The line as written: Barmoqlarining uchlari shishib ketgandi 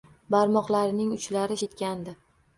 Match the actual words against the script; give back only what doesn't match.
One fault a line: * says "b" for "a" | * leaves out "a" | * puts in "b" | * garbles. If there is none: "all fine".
* leaves out "shishib"